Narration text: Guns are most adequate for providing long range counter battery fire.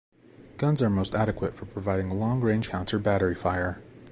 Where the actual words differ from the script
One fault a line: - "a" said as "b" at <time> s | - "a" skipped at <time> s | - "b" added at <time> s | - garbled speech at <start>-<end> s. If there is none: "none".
none